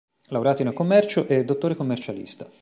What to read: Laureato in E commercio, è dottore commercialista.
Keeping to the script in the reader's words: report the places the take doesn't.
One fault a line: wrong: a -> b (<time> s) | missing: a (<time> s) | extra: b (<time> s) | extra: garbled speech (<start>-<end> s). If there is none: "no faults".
no faults